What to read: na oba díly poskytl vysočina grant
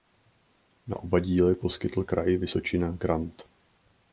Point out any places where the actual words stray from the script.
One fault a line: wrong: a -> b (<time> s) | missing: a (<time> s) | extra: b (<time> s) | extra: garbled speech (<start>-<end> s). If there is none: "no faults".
extra: kraj (2.0 s)